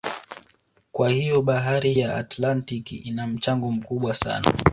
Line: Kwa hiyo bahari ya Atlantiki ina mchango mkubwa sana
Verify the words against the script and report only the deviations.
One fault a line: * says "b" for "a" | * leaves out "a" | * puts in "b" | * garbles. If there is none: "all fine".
all fine